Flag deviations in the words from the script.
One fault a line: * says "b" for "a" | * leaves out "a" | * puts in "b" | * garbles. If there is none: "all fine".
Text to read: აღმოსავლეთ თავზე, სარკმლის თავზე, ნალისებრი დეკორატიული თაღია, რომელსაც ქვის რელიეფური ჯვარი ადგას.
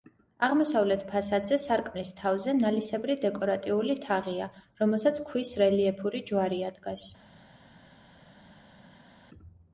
* says "ფასადზე" for "თავზე"